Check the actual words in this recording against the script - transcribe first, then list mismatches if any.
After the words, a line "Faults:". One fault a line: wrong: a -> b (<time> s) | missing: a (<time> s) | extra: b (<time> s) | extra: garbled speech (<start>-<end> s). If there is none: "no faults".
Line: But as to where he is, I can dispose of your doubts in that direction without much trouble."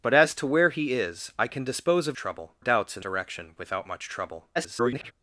But as to where he is, I can dispose of trouble doubts in direction without much trouble." [garbled]
Faults:
wrong: your -> trouble (2.1 s)
missing: that (3.0 s)
extra: garbled speech (4.6-5.1 s)